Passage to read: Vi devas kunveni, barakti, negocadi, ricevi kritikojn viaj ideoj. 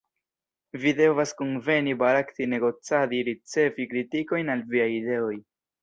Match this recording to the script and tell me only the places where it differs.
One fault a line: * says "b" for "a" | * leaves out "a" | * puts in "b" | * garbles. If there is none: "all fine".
* puts in "al"